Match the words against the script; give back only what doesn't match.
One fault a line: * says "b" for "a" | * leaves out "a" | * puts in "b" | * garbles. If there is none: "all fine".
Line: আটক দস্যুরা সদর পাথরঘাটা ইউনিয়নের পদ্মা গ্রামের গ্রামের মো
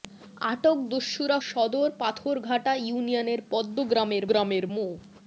all fine